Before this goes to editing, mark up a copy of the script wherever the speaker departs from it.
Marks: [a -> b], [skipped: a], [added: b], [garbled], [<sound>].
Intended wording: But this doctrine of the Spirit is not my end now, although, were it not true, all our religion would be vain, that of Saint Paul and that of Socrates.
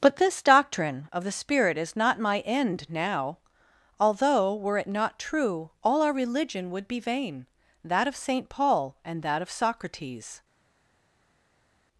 But this doctrine of the Spirit is not my end now, although, were it not true, all our religion would be vain, that of Saint Paul and that of Socrates.